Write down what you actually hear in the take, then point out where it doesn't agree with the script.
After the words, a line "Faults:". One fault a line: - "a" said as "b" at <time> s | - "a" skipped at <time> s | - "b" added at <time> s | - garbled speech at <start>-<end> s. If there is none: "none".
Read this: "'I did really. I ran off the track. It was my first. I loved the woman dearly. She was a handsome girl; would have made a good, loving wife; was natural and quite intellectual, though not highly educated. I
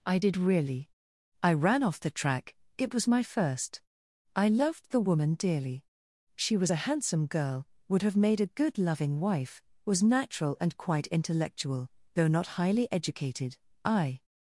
"'I did really. I ran off the track. It was my first. I loved the woman dearly. She was a handsome girl; would have made a good, loving wife; was natural and quite intellectual, though not highly educated. I
Faults:
none